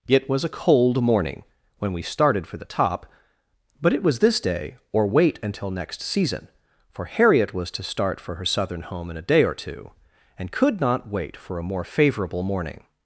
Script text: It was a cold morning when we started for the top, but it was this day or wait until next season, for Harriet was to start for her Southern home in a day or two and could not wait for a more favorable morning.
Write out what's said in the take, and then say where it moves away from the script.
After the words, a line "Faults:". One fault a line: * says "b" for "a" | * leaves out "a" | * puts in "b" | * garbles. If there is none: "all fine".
It was a cold morning when we started for the top, but it was this day or wait until next season, for Harriet was to start for her Southern home in a day or two and could not wait for a more favorable morning.
Faults:
all fine